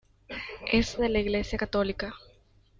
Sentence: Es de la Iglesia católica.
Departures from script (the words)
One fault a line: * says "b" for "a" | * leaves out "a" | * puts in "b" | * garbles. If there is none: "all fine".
all fine